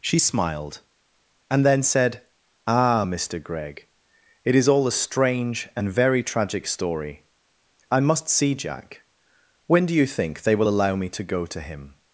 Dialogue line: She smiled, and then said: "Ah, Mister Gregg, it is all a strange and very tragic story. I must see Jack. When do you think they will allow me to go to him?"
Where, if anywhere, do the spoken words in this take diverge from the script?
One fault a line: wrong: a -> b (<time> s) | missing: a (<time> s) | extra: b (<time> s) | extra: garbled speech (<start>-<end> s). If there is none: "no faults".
no faults